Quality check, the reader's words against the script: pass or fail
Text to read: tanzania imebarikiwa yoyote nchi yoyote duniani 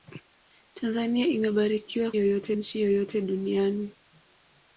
pass